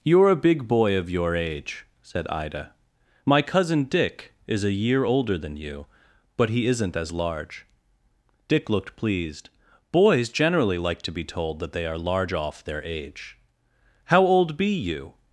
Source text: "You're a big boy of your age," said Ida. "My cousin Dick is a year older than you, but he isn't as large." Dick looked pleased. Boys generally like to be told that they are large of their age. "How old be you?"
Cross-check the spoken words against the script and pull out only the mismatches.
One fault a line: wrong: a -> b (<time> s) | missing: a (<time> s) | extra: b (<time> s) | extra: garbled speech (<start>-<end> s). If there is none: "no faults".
wrong: of -> off (12.3 s)